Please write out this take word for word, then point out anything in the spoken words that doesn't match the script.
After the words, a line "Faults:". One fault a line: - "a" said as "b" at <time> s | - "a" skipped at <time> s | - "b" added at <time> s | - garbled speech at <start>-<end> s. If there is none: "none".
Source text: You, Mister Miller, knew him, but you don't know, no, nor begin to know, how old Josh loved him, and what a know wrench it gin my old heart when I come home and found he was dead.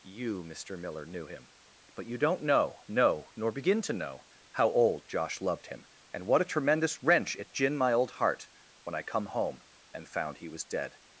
You, Mister Miller, knew him, but you don't know, no, nor begin to know, how old Josh loved him, and what a tremendous wrench it gin my old heart when I come home and found he was dead.
Faults:
- "know" said as "tremendous" at 6.5 s